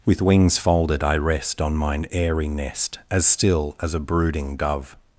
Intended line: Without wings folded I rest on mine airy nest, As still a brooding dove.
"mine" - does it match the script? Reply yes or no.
yes